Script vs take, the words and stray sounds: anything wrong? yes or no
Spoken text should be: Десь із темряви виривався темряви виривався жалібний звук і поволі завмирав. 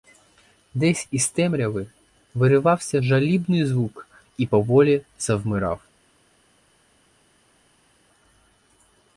yes